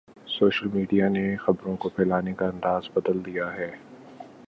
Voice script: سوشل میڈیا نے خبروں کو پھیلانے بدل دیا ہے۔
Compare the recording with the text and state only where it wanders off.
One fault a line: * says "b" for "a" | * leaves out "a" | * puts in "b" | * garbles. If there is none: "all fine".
* puts in "کا انداز"